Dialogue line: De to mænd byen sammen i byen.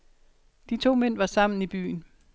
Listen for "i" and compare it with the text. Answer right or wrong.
right